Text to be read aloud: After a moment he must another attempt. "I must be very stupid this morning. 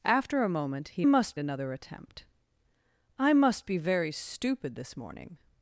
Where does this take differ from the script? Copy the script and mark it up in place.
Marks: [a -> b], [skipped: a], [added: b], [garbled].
After a moment he must another attempt. "I must be very stupid this morning.